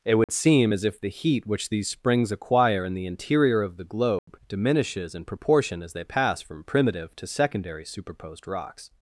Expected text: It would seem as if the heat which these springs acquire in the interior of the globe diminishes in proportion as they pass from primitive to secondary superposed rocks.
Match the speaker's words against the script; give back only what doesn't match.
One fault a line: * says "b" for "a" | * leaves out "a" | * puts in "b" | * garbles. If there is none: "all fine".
all fine